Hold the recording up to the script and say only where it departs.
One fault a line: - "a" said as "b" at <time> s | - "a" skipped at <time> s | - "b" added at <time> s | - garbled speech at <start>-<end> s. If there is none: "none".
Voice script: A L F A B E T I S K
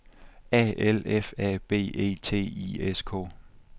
none